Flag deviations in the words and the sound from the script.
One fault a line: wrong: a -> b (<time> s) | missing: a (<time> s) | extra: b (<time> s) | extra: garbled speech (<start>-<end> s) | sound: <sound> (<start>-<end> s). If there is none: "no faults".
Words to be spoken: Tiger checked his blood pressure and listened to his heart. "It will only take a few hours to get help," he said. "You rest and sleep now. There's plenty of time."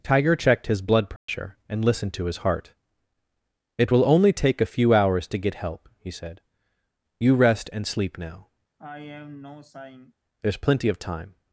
sound: dropout (1.2-1.3 s)
sound: sigh (8.8-10.1 s)